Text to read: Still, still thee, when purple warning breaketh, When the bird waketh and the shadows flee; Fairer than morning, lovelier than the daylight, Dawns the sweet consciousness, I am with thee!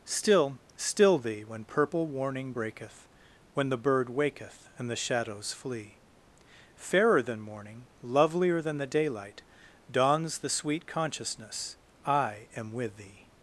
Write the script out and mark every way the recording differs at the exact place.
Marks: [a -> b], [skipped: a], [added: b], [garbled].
Still, still thee, when purple warning breaketh, When the bird waketh and the shadows flee; Fairer than morning, lovelier than the daylight, Dawns the sweet consciousness, I am with thee!